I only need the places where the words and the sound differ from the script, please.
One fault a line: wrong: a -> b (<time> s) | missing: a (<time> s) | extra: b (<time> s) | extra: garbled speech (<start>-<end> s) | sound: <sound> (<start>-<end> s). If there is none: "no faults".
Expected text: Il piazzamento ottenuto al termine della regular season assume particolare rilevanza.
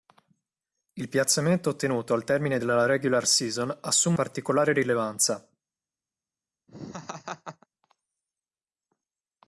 sound: laugh (6.7-7.7 s)